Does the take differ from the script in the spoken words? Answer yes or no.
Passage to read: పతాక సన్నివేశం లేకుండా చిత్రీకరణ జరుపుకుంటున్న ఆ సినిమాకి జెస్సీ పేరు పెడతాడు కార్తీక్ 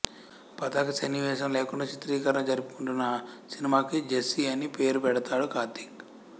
yes